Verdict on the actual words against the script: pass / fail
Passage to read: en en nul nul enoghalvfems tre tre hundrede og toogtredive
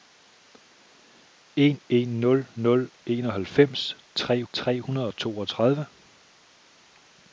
pass